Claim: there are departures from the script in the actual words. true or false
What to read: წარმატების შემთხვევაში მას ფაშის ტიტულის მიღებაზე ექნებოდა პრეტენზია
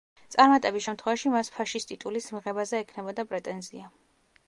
false